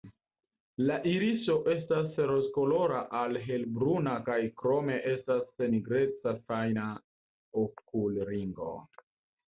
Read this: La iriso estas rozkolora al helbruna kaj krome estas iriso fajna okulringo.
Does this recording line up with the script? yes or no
no